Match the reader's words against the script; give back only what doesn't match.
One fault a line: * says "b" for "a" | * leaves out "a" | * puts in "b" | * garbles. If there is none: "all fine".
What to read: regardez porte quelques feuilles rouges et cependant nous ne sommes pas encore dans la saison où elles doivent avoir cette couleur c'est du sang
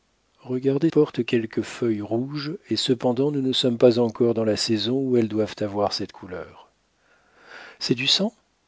all fine